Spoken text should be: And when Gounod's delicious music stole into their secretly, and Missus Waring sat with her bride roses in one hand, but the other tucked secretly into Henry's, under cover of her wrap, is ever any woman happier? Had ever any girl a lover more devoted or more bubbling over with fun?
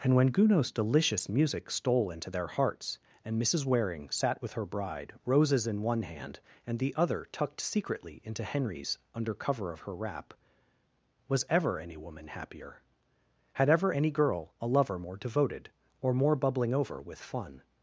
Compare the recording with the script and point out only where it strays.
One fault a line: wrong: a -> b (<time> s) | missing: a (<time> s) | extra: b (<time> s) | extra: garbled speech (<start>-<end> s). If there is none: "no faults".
wrong: secretly -> hearts (2.5 s)
wrong: but -> and (6.7 s)
wrong: is -> was (11.3 s)